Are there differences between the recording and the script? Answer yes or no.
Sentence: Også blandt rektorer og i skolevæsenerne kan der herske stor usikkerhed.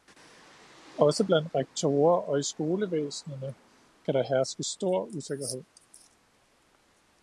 no